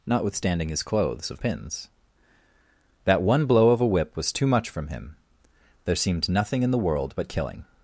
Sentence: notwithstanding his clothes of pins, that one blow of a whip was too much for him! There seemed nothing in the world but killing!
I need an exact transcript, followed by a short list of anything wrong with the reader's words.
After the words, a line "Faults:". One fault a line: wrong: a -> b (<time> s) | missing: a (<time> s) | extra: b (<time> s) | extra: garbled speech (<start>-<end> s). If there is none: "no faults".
notwithstanding his clothes of pins, that one blow of a whip was too much from him! There seemed nothing in the world but killing!
Faults:
wrong: for -> from (4.7 s)